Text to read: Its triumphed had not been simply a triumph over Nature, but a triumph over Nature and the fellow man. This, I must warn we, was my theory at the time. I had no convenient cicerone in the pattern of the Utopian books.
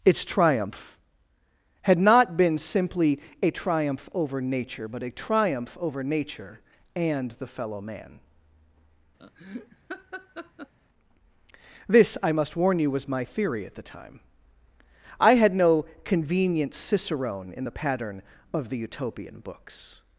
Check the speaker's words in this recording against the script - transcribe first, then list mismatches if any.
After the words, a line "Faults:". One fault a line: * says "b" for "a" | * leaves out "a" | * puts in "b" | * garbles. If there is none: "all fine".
Its triumph had not been simply a triumph over Nature, but a triumph over Nature and the fellow man. This, I must warn you, was my theory at the time. I had no convenient cicerone in the pattern of the Utopian books.
Faults:
* says "triumph" for "triumphed"
* says "you" for "we"